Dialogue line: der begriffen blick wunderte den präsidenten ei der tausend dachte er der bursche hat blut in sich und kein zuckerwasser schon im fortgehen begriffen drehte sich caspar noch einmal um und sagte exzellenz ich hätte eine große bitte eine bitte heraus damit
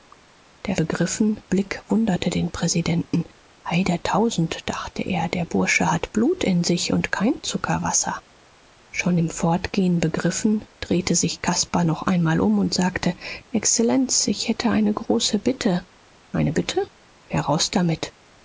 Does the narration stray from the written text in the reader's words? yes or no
no